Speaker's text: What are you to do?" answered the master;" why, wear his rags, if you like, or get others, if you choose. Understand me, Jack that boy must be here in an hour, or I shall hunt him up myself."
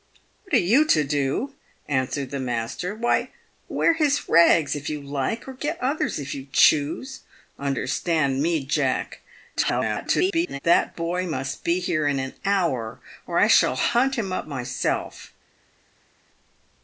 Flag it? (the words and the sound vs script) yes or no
yes